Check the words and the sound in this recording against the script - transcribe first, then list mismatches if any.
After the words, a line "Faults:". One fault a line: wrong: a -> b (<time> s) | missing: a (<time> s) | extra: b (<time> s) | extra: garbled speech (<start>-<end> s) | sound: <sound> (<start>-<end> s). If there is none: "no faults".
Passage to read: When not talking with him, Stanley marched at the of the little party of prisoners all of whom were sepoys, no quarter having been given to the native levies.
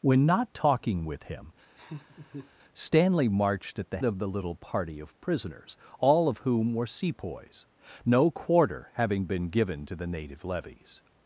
When not talking with him, Stanley marched at the of the little party of prisoners all of whom were sepoys, no quarter having been given to the native levies.
Faults:
sound: laugh (1.8-2.5 s)